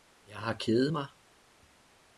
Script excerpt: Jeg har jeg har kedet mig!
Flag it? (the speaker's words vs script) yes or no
yes